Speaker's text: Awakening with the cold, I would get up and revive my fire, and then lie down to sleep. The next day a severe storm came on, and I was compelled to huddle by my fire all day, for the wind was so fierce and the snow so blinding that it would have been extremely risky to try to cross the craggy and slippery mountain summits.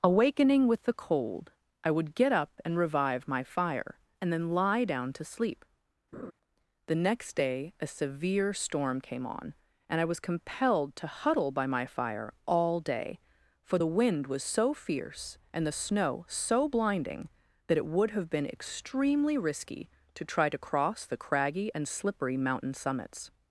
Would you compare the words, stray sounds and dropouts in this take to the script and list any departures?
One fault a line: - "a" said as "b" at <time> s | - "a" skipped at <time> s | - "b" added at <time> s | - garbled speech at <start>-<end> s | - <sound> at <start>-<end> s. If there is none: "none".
- laugh at 6.1-6.3 s